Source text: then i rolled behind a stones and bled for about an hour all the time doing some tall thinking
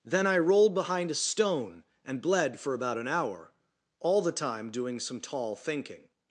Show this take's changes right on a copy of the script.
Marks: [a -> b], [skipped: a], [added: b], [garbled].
then i rolled behind a [stones -> stone] and bled for about an hour all the time doing some tall thinking